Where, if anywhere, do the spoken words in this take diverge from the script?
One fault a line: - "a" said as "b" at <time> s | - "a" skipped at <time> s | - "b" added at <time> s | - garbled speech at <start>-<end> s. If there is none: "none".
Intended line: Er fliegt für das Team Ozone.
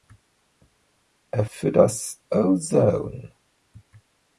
- "fliegt" skipped at 1.4 s
- "Team" skipped at 2.2 s